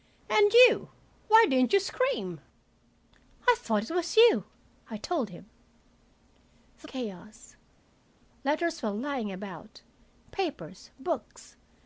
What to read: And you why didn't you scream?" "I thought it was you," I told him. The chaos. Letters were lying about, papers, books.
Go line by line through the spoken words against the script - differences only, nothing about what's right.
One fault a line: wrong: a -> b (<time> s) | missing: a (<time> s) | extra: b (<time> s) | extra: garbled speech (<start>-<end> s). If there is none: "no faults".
no faults